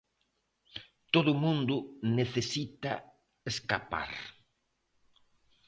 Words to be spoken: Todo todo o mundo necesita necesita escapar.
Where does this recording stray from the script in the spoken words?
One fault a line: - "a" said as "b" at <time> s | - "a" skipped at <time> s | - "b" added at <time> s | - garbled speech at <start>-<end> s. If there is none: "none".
- "todo" skipped at 1.3 s
- "necesita" skipped at 2.9 s